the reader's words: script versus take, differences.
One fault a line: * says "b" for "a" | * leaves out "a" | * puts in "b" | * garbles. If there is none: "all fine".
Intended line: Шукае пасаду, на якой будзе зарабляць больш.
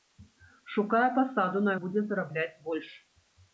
* leaves out "якой"